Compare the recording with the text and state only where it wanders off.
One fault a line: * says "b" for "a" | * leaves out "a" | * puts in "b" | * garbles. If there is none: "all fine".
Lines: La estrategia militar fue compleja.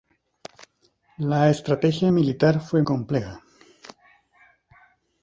all fine